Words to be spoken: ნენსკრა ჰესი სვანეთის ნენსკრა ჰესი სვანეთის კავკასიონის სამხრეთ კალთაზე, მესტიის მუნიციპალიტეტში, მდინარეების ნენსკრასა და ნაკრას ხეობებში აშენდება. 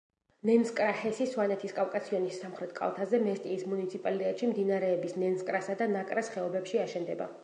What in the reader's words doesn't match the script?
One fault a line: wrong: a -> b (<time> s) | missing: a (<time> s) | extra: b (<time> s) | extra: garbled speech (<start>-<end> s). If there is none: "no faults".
missing: ნენსკრა ჰესი სვანეთის (1.8 s)